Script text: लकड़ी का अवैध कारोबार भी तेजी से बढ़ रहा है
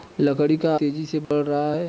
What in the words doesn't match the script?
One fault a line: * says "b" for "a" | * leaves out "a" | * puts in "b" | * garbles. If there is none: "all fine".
* leaves out "अवैध कारोबार भी"